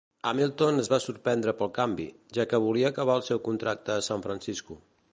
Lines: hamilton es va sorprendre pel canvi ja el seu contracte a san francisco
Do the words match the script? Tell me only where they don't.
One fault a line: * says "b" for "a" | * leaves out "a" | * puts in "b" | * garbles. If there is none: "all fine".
* puts in "que volia acabar"